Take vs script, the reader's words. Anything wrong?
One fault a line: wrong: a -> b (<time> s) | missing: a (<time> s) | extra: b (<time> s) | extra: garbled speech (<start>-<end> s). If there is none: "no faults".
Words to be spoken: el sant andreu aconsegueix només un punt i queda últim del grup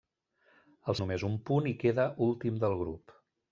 missing: sant andreu aconsegueix (0.9 s)